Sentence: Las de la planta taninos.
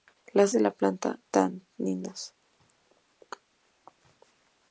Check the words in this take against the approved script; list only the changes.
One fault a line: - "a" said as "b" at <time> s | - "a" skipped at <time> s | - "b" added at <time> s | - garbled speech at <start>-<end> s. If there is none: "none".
none